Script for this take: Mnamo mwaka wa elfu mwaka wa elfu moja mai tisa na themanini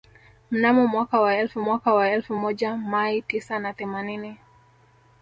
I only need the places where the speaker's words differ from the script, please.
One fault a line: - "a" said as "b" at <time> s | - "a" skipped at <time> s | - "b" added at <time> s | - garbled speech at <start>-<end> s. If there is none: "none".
none